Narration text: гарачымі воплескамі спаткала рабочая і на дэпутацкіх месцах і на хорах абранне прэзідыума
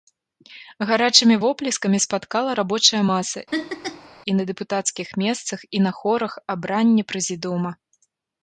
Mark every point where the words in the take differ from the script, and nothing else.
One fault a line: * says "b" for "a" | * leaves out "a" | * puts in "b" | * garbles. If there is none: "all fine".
* puts in "маса"